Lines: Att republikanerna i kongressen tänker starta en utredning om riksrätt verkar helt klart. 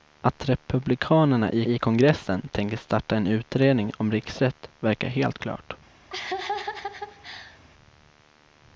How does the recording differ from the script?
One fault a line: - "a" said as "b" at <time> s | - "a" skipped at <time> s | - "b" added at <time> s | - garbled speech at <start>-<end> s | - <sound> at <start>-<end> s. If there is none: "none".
- "i" added at 1.6 s
- laugh at 6.1-7.6 s